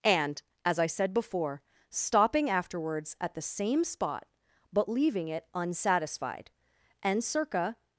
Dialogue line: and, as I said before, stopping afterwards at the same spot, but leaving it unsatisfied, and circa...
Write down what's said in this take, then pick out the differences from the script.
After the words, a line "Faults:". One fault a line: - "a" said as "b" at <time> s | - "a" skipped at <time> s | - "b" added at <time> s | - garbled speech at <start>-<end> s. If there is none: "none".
and, as I said before, stopping afterwards at the same spot, but leaving it unsatisfied, and circa...
Faults:
none